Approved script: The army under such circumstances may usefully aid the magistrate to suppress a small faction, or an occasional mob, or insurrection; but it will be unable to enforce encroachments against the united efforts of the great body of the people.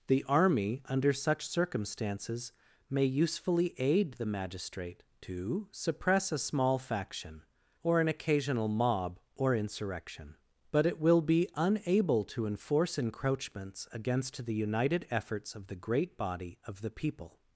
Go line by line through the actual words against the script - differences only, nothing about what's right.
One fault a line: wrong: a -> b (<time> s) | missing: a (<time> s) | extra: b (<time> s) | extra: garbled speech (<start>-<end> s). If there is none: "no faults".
no faults